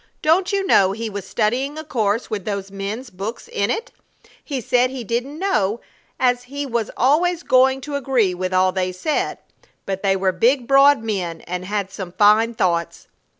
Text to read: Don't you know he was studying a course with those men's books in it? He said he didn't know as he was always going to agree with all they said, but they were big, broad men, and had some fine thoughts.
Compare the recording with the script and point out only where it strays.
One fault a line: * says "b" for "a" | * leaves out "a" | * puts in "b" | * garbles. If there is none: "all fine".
all fine